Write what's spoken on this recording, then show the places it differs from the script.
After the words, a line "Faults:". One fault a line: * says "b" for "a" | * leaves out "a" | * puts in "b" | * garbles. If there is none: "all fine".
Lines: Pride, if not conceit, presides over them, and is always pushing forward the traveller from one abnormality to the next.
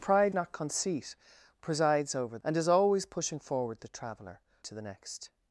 Pride, not conceit, presides over and is always pushing forward the traveller to the next.
Faults:
* leaves out "if"
* leaves out "them"
* leaves out "from one abnormality"